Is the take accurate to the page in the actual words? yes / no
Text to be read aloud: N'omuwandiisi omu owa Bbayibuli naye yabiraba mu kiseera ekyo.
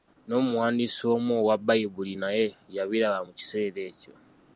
yes